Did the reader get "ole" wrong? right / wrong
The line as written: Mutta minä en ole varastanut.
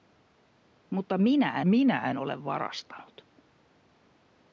right